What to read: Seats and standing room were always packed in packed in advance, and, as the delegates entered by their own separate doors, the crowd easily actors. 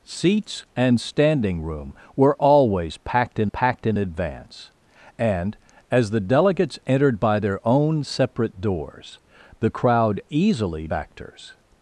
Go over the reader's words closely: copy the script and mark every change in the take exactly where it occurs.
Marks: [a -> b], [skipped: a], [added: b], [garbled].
Seats and standing room were always packed in packed in advance, and, as the delegates entered by their own separate doors, the crowd easily actors.